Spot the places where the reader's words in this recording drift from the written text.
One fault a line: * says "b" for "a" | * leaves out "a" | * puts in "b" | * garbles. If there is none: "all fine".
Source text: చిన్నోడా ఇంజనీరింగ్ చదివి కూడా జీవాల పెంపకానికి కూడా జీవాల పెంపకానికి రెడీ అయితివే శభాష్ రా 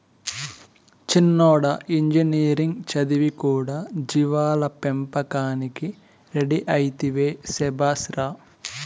* leaves out "కూడా జీవాల పెంపకానికి"